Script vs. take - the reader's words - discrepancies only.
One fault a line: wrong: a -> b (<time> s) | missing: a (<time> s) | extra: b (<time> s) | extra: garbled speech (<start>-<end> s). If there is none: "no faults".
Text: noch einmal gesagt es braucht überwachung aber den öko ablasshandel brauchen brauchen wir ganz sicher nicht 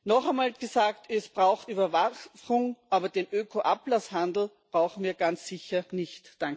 missing: brauchen (5.0 s)